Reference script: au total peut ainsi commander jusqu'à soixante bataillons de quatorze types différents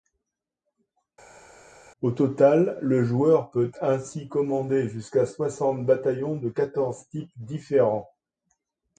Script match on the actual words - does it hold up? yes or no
no